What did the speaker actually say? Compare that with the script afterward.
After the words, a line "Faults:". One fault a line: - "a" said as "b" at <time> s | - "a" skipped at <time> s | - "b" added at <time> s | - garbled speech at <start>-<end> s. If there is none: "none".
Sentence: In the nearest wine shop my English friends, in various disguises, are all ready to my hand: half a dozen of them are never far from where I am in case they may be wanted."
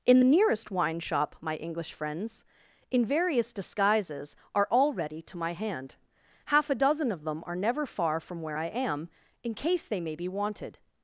In the nearest wine shop my English friends, in various disguises, are all ready to my hand: half a dozen of them are never far from where I am in case they may be wanted."
Faults:
none